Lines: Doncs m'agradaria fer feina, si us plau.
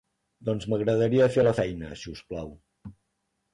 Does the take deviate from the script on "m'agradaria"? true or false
false